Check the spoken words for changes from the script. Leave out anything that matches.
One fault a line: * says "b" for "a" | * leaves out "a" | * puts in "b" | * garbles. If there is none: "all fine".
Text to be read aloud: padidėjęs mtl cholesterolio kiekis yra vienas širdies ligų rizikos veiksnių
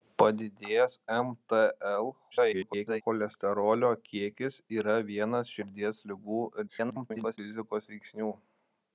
* garbles
* garbles